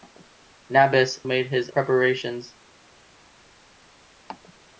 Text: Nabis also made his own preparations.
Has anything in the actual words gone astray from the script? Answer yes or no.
yes